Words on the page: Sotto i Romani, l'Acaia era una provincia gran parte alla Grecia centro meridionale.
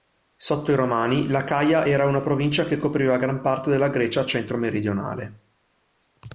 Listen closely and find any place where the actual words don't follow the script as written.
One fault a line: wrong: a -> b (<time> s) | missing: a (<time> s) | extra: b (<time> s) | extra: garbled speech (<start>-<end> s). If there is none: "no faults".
extra: che copriva (2.6 s)
wrong: alla -> della (3.7 s)